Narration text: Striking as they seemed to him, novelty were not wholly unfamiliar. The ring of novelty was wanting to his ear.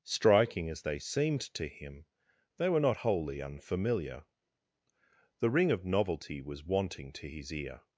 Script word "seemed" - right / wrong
right